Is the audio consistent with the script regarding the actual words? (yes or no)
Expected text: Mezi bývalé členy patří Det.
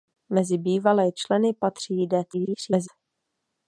no